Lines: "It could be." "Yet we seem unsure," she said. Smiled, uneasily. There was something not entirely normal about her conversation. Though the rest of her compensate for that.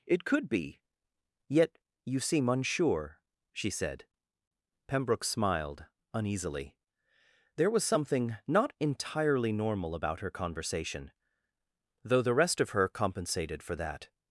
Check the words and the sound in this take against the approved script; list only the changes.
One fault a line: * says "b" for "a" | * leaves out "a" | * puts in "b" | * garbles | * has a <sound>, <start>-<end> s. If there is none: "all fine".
* says "you" for "we"
* puts in "Pembroke"
* says "compensated" for "compensate"